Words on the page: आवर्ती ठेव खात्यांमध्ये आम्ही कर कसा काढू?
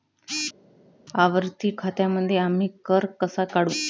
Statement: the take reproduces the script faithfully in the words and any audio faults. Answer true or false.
false